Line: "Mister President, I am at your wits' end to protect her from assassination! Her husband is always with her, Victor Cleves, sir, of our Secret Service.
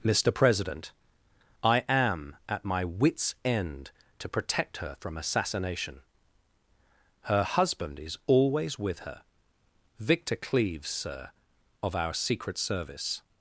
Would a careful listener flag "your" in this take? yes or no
yes